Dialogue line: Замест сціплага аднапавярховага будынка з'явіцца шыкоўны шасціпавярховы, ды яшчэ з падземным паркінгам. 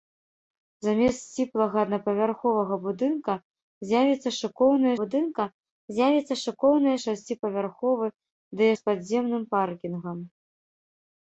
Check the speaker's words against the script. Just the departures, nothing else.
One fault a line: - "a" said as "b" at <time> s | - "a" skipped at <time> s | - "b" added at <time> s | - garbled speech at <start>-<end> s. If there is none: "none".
- "будынка з'явіцца шыкоўны" added at 5.0 s
- "яшчэ" skipped at 8.7 s